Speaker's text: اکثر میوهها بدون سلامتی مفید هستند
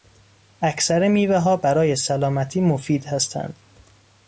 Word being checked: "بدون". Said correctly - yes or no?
no